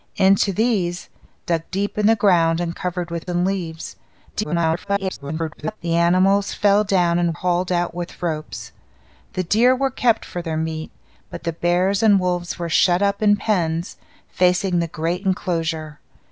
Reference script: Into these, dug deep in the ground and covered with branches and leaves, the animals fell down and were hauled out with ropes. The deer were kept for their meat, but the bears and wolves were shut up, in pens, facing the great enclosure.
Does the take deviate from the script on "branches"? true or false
true